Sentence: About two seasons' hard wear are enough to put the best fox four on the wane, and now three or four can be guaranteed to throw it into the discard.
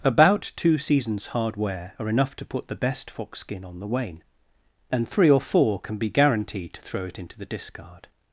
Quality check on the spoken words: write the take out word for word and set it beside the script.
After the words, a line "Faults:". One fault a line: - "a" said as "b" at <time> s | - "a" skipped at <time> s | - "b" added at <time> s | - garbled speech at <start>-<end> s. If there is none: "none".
About two seasons' hard wear are enough to put the best fox skin on the wane, and three or four can be guaranteed to throw it into the discard.
Faults:
- "four" said as "skin" at 3.4 s
- "now" skipped at 5.0 s